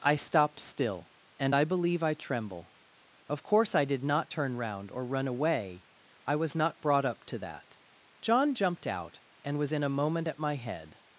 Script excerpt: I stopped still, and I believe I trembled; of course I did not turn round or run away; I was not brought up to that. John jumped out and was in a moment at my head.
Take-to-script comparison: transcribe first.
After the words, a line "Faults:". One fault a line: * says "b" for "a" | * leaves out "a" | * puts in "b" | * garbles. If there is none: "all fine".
I stopped still, and I believe I tremble; of course I did not turn round or run away; I was not brought up to that. John jumped out and was in a moment at my head.
Faults:
* says "tremble" for "trembled"